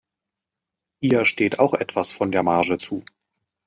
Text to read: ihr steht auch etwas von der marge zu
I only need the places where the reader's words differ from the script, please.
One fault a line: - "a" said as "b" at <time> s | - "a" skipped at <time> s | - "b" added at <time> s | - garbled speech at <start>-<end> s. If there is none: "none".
none